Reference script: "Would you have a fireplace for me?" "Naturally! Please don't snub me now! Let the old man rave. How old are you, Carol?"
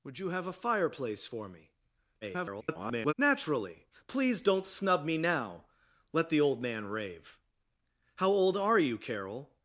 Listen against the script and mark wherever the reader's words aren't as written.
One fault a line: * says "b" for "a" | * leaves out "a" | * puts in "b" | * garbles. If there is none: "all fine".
* garbles